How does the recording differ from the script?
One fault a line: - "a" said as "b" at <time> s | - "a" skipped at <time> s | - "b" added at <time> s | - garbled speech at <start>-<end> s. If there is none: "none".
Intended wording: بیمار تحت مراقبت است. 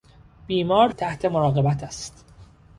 none